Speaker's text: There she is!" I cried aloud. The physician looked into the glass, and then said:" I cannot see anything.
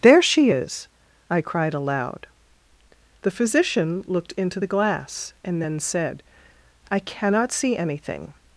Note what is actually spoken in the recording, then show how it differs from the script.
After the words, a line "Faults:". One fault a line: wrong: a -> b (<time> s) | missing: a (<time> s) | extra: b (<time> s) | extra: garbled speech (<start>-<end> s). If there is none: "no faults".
There she is!" I cried aloud. The physician looked into the glass, and then said:" I cannot see anything.
Faults:
no faults